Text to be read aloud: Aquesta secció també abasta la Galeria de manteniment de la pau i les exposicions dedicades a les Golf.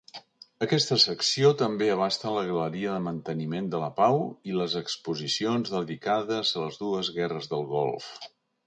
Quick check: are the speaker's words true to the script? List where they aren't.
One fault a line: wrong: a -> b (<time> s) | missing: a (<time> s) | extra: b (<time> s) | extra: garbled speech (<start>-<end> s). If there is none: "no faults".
extra: dues guerres del (6.9 s)